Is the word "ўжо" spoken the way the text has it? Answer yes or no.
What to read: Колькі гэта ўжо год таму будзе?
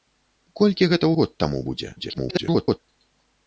no